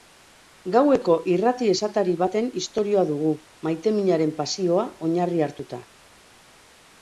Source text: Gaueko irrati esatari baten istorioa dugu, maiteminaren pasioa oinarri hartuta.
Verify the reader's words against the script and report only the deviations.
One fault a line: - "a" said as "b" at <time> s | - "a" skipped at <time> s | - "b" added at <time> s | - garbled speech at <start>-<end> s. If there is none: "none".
none